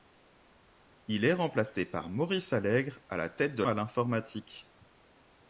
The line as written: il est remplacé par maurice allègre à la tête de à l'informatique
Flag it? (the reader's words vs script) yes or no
no